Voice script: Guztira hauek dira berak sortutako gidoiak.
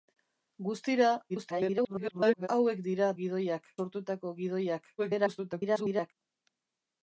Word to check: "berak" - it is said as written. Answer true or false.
false